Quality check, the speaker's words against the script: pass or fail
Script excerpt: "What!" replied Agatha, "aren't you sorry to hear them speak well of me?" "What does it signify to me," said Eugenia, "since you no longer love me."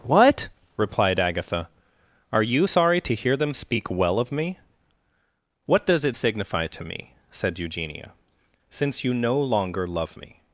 fail